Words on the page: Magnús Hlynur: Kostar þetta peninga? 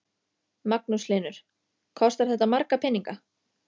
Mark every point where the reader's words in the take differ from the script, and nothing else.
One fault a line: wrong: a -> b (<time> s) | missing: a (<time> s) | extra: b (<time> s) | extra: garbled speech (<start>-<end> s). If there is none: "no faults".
extra: marga (2.6 s)